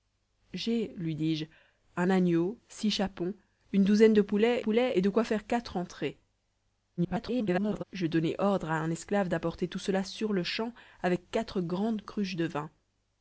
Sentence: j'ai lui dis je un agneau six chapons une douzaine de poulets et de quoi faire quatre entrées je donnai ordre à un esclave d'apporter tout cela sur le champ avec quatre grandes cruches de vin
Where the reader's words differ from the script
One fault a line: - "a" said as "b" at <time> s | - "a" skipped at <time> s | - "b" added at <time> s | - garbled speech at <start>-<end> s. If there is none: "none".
- "poulets" added at 4.6 s
- garbled speech at 7.0-7.8 s